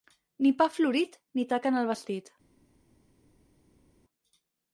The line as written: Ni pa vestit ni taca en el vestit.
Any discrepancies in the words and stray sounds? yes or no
yes